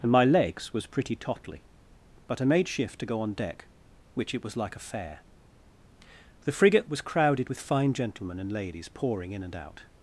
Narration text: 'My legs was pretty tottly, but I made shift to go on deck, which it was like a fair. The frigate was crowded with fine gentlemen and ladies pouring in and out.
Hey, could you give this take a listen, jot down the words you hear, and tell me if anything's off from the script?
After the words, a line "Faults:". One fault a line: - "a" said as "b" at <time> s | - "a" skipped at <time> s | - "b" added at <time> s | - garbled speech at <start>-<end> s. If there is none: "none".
and 'My legs was pretty tottly, but I made shift to go on deck, which it was like a fair. The frigate was crowded with fine gentlemen and ladies pouring in and out.
Faults:
- "and" added at 0.0 s